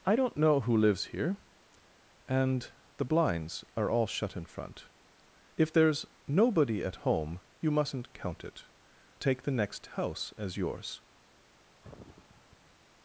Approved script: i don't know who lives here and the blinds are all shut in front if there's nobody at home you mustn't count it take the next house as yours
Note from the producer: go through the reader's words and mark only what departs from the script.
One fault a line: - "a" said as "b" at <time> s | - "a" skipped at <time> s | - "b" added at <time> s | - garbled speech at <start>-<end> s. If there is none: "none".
none